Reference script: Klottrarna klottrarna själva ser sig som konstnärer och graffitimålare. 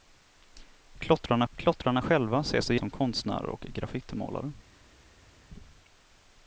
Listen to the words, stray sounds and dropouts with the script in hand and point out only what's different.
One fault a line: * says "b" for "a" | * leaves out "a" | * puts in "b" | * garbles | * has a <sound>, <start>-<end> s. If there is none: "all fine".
all fine